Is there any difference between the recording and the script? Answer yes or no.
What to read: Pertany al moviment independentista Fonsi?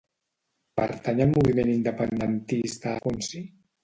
no